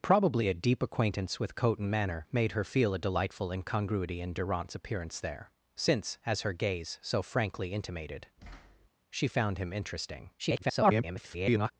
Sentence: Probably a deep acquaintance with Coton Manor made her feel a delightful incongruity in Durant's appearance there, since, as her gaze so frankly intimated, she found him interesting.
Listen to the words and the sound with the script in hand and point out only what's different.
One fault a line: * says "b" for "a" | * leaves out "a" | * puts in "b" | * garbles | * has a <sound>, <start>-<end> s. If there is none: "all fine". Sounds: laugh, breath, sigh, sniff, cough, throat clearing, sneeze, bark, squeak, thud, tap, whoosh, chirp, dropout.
* has a thud, 8.4-8.9 s
* garbles